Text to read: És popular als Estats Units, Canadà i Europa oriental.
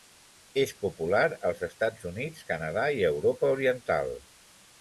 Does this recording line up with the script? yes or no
yes